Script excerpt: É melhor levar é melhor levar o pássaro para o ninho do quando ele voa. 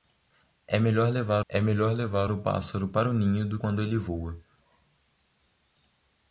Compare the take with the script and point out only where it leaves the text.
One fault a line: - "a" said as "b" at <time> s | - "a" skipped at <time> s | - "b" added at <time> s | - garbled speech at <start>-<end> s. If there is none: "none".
none